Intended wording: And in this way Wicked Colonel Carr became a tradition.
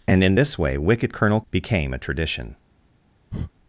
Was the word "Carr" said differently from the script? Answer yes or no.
yes